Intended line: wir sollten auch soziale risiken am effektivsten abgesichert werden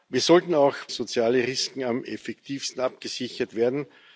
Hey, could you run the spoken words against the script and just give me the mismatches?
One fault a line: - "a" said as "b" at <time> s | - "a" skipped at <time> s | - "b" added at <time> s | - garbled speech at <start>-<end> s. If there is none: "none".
none